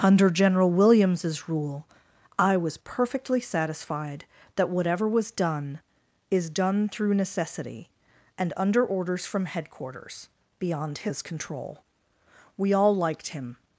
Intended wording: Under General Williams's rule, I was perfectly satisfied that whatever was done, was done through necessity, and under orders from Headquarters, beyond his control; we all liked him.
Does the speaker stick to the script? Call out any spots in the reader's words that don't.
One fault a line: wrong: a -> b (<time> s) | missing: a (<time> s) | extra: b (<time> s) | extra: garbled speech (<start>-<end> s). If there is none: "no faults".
wrong: was -> is (6.3 s)